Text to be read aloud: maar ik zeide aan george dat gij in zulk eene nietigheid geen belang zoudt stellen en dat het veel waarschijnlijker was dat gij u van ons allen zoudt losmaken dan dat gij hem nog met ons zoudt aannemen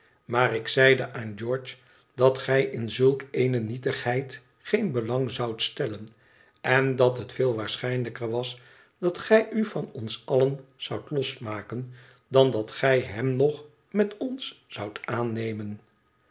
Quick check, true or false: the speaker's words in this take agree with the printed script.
true